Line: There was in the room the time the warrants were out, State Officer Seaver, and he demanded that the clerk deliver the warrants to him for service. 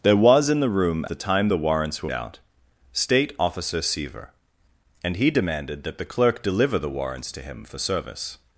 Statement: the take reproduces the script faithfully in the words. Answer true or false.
true